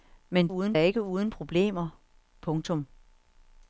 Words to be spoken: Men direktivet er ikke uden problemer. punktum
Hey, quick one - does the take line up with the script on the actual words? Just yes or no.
no